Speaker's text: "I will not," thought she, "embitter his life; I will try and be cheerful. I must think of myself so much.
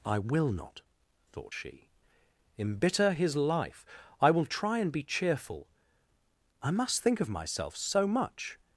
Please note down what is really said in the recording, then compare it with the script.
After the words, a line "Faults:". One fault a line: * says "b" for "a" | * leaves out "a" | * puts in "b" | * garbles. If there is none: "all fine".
"I will not," thought she, "embitter his life; I will try and be cheerful. I must think of myself so much.
Faults:
all fine